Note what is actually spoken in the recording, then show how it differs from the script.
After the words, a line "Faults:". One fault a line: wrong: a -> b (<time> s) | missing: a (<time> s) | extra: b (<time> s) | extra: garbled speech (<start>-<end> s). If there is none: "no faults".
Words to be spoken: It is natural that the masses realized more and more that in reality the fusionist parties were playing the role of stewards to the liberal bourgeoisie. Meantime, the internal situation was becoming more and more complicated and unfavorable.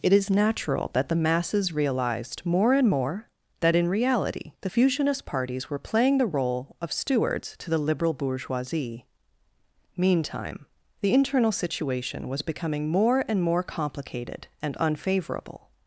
It is natural that the masses realized more and more that in reality the fusionist parties were playing the role of stewards to the liberal bourgeoisie. Meantime, the internal situation was becoming more and more complicated and unfavorable.
Faults:
no faults